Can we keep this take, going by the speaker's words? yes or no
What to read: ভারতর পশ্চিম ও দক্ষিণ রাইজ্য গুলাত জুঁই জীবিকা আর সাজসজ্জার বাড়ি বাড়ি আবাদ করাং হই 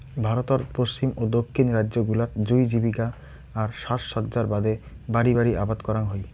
no